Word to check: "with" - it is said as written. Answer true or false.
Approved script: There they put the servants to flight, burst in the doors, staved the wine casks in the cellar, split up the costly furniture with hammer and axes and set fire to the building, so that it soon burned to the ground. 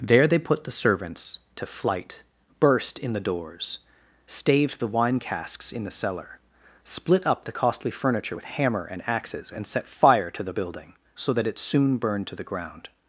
true